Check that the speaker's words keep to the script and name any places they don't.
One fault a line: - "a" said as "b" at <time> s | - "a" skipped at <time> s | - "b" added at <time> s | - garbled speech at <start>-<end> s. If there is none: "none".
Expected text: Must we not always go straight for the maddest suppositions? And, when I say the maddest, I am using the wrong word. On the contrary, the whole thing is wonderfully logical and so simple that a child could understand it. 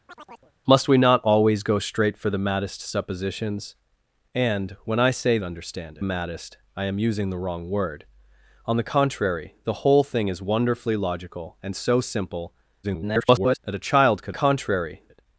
- "the" said as "understand" at 5.4 s
- garbled speech at 12.8-13.6 s
- "understand" said as "contrary" at 14.3 s